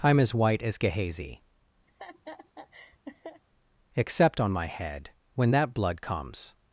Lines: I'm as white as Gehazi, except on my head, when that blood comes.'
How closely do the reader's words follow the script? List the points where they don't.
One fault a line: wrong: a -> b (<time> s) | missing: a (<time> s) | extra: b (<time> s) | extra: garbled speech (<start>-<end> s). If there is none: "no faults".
no faults